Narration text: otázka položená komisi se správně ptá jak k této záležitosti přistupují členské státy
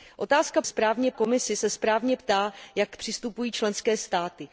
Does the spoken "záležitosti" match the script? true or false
false